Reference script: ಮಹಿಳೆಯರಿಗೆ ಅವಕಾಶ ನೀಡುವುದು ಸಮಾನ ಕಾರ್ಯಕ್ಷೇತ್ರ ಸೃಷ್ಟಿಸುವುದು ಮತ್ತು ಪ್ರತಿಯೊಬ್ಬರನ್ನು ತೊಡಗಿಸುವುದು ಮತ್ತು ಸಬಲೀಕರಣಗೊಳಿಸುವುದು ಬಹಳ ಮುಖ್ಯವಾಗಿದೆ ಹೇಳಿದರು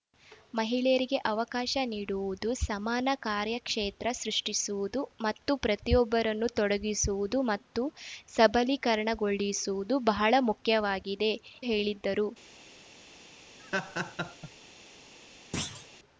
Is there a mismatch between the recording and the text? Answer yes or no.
no